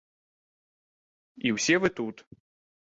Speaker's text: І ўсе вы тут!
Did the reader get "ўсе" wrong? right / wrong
right